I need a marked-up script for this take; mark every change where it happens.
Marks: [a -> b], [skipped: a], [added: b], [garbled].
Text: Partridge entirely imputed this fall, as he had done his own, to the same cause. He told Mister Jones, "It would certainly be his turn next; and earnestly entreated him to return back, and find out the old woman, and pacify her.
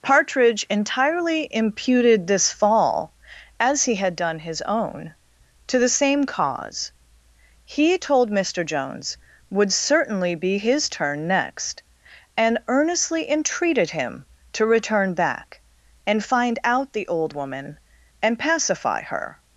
Partridge entirely imputed this fall, as he had done his own, to the same cause. He told Mister Jones, [skipped: "It] would certainly be his turn next; and earnestly entreated him to return back, and find out the old woman, and pacify her.